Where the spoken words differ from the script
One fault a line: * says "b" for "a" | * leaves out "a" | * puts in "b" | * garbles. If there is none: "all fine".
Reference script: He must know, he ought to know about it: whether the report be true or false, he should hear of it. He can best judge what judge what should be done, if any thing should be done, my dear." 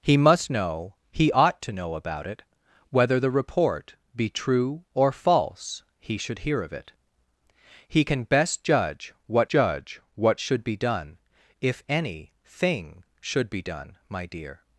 all fine